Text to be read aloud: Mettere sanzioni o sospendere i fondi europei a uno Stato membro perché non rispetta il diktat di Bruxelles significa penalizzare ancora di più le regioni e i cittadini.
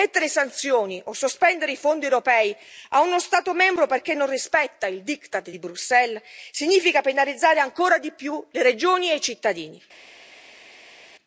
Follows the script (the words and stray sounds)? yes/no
yes